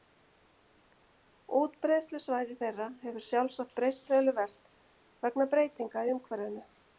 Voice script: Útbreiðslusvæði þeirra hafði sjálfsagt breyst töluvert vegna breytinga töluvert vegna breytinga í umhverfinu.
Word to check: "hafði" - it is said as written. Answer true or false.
false